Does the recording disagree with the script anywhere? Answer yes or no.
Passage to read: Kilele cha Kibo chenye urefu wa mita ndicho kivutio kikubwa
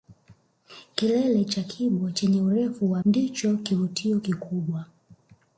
yes